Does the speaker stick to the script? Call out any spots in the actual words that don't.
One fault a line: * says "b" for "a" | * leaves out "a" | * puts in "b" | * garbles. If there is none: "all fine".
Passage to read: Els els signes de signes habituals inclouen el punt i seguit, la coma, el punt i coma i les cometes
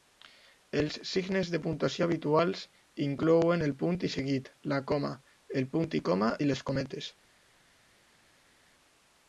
* leaves out "els"
* says "puntuació" for "signes"